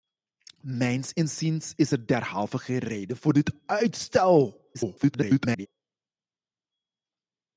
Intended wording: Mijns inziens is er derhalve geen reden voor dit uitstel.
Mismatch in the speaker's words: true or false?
true